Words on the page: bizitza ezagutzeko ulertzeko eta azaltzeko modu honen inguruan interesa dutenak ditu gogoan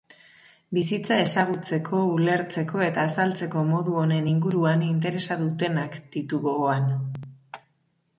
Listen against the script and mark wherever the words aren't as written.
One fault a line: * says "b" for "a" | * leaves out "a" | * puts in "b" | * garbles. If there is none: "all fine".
all fine